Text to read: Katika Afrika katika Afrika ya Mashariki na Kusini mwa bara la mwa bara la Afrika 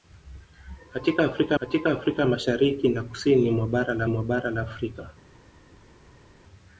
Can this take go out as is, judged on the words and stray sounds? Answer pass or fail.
pass